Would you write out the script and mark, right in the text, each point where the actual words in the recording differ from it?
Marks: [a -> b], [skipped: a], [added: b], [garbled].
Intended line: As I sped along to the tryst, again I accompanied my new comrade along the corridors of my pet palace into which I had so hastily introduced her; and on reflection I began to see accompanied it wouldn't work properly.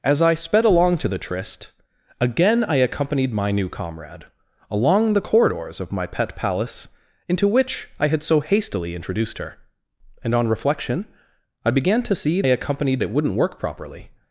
As I sped along to the tryst, again I accompanied my new comrade along the corridors of my pet palace into which I had so hastily introduced her; and on reflection I began to see accompanied it wouldn't work properly.